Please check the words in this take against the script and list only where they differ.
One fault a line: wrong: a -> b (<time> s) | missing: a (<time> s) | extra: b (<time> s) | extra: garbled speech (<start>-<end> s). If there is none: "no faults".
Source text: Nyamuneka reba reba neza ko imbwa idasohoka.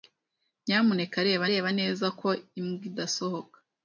no faults